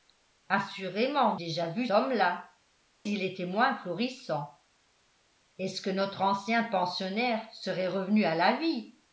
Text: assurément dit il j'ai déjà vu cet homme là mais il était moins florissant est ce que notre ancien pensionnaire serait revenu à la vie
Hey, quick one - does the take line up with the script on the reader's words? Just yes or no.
no